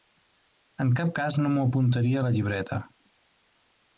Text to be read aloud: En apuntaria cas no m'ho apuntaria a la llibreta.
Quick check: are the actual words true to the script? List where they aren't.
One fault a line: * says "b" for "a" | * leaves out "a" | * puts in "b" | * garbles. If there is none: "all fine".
* says "cap" for "apuntaria"